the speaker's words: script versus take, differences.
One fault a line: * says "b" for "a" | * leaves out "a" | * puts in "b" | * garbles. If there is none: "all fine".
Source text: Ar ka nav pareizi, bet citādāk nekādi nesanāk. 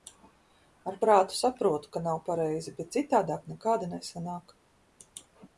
* puts in "prātu saprotu"